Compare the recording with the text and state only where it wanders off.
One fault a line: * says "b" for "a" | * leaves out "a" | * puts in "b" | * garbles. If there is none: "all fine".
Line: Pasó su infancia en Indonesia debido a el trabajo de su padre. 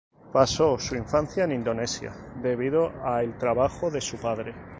all fine